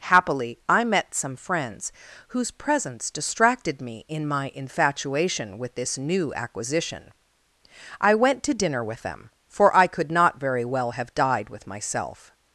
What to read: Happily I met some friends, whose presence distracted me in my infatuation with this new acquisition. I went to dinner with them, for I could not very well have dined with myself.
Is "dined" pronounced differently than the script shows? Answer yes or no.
yes